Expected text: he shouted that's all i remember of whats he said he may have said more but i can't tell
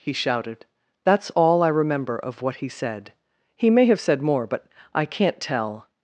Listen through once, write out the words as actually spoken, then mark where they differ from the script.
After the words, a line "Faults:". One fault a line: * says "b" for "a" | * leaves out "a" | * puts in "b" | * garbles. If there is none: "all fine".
he shouted that's all i remember of what he said he may have said more but i can't tell
Faults:
* says "what" for "whats"